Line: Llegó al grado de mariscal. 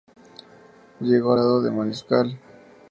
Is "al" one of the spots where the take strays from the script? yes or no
yes